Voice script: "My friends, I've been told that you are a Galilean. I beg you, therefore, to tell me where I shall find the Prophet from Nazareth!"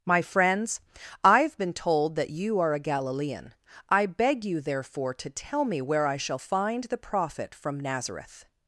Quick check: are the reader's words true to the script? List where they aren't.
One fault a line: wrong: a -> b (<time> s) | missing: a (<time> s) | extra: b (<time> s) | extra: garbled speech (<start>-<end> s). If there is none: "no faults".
no faults